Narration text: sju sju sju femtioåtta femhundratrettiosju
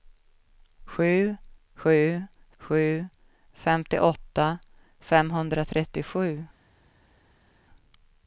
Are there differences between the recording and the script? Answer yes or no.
no